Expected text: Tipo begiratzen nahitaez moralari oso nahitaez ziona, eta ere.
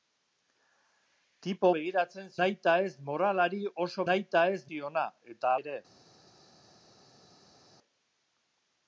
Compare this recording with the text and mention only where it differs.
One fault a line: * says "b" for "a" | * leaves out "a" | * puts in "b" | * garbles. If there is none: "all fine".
all fine